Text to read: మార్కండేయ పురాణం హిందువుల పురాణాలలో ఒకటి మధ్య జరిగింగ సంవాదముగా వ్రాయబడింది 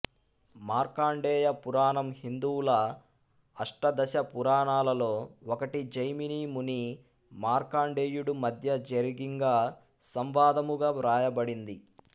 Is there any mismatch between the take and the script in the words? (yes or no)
yes